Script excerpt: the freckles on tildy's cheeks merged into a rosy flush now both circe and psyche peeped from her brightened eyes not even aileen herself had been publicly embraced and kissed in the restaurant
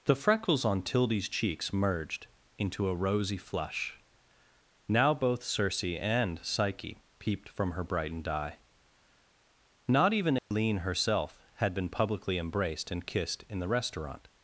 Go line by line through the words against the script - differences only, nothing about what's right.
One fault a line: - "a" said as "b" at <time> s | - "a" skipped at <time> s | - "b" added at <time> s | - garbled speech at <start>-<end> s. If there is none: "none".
- "eyes" said as "eye" at 8.3 s